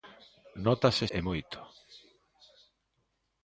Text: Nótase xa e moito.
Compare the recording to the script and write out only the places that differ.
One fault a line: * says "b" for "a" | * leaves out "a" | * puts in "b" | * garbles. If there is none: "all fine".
* leaves out "xa"